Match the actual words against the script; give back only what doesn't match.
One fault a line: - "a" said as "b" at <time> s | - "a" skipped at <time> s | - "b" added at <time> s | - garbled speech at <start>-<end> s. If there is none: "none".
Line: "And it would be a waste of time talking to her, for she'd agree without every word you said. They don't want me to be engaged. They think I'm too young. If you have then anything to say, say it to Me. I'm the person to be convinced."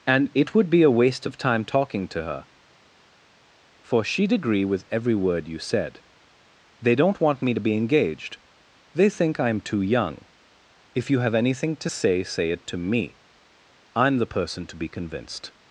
- "without" said as "with" at 4.6 s
- "then" skipped at 11.3 s